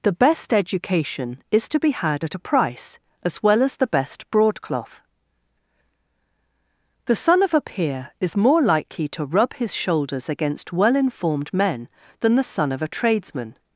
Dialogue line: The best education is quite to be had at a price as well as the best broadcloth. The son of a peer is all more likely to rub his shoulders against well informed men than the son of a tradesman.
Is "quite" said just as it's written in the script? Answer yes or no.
no